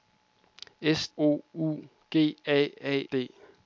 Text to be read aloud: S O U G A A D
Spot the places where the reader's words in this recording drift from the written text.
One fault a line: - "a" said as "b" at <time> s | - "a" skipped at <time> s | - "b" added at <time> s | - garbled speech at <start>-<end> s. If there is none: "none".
none